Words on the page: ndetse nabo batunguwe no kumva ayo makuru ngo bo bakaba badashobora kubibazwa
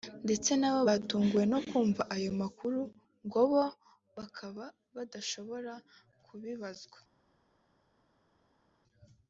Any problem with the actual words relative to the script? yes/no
no